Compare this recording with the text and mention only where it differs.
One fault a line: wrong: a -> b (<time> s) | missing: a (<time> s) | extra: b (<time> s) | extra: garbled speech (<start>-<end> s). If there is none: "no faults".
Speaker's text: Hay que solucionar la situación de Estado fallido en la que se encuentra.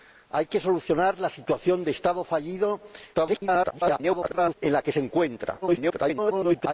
extra: garbled speech (3.1-4.5 s)
extra: garbled speech (5.6-6.7 s)